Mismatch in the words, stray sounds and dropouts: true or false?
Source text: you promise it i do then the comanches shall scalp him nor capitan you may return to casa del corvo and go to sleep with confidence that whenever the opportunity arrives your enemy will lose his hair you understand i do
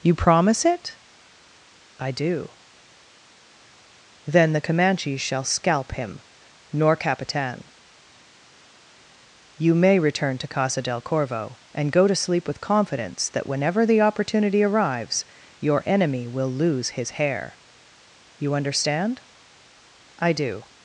false